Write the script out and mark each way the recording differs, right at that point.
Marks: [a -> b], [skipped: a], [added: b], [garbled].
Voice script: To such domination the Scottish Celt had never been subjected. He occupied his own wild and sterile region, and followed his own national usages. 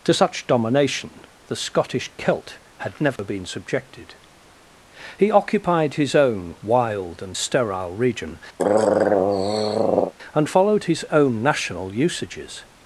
To such domination the Scottish Celt had never been subjected. He occupied his own wild and sterile region, and followed his own national usages.